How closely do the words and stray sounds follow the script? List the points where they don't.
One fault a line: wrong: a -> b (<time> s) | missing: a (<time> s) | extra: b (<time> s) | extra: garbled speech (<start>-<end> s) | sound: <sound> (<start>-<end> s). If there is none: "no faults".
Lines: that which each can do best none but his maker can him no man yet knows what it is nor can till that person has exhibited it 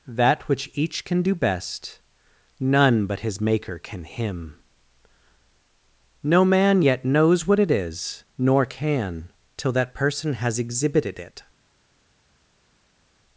no faults